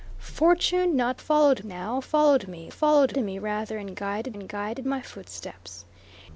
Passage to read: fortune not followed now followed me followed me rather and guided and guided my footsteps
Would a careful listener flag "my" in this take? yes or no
no